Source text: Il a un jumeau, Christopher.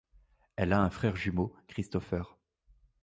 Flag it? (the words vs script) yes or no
yes